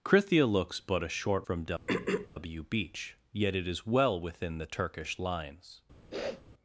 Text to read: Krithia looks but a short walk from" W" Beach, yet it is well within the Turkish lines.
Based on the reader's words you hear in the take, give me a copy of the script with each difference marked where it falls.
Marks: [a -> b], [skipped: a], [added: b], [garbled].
Krithia looks but a short [skipped: walk] from" W" Beach, yet it is well within the Turkish lines.